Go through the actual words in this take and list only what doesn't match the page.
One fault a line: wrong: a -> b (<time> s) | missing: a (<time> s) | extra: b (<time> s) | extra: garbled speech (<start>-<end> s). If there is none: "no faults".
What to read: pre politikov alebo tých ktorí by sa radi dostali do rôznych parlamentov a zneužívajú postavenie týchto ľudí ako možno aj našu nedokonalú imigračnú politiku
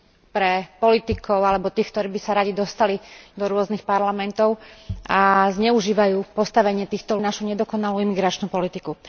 missing: ľudí ako možno (7.2 s)